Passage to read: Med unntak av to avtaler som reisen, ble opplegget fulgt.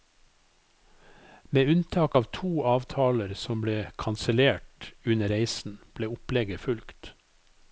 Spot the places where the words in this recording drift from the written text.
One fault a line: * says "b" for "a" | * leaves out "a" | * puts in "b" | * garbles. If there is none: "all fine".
* puts in "ble kansellert under"